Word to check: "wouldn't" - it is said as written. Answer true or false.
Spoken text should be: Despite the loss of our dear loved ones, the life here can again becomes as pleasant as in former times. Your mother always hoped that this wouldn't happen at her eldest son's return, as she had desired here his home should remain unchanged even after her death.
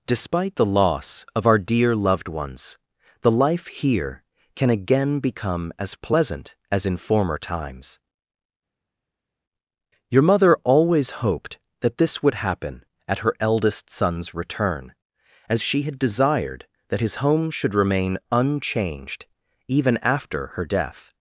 false